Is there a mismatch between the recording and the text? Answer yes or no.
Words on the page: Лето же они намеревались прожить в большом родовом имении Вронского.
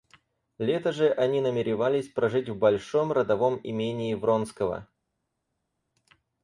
no